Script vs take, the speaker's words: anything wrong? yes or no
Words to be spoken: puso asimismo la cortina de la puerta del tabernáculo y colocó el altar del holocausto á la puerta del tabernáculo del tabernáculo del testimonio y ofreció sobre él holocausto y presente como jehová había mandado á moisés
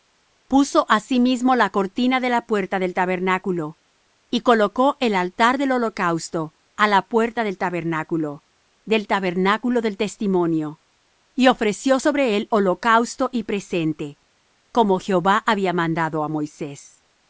no